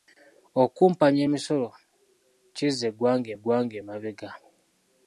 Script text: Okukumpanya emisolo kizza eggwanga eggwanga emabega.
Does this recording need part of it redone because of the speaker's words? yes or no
no